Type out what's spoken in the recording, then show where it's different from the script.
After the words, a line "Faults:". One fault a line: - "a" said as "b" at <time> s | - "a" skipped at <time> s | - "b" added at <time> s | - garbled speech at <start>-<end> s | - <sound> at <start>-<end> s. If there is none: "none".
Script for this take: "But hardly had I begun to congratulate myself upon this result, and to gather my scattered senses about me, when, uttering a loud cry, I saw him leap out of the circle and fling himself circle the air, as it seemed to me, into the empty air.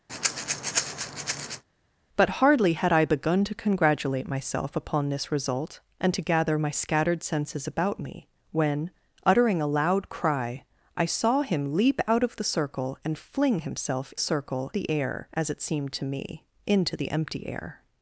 "But hardly had I begun to congratulate myself upon this result, and to gather my scattered senses about me, when, uttering a loud cry, I saw him leap out of the circle and fling himself circle the air, as it seemed to me, into the empty air.
Faults:
- breath at 0.1-1.6 s